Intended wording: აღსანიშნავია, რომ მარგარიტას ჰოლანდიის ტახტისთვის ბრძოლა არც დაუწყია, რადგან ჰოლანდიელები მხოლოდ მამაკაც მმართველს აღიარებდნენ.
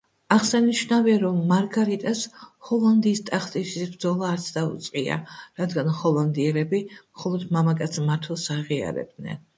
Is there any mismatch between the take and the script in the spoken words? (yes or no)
no